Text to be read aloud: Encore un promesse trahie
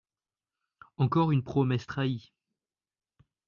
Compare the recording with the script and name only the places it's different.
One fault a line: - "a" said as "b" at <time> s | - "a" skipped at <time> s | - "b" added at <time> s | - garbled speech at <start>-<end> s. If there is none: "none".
- "un" said as "une" at 1.3 s